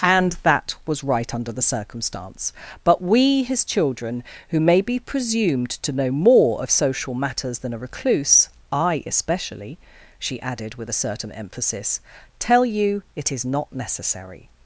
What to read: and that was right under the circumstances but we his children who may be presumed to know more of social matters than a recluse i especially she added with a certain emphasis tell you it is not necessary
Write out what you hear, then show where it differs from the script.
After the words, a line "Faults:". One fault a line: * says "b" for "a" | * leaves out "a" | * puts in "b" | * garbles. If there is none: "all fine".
and that was right under the circumstance but we his children who may be presumed to know more of social matters than a recluse i especially she added with a certain emphasis tell you it is not necessary
Faults:
* says "circumstance" for "circumstances"